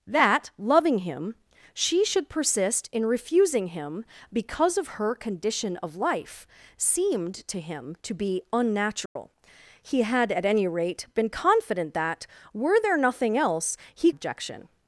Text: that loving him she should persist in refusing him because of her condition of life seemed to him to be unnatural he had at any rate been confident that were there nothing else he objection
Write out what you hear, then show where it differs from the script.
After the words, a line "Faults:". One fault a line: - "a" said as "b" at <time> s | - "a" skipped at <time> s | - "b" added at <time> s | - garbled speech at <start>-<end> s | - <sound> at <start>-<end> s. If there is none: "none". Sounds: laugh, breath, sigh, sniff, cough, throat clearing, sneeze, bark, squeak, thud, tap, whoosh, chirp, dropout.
that loving him she should persist in refusing him because of her condition of life seemed to him to be unnatural he had at any rate been confident that were there nothing else he objection
Faults:
- dropout at 9.1-9.2 s